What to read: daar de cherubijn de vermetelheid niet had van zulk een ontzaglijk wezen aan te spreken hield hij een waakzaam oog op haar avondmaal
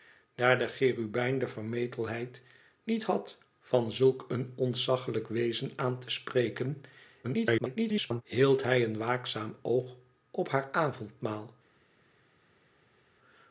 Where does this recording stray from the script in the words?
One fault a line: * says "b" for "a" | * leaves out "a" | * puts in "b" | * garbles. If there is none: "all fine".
* garbles